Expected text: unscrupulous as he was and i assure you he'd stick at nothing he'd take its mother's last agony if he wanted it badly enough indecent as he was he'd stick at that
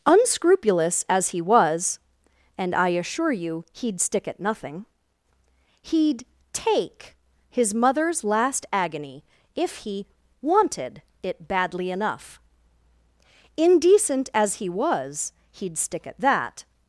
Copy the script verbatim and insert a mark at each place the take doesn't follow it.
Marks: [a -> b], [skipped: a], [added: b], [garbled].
unscrupulous as he was and i assure you he'd stick at nothing he'd take [its -> his] mother's last agony if he wanted it badly enough indecent as he was he'd stick at that